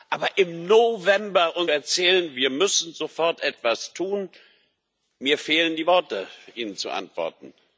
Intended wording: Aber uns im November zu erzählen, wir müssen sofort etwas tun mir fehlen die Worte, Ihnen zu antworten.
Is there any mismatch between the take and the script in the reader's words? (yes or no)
yes